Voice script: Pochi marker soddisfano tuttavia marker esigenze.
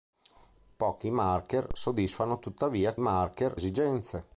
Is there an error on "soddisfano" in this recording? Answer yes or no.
no